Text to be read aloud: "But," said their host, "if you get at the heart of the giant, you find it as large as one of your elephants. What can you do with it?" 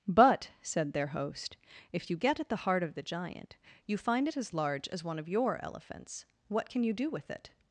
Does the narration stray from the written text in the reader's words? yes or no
no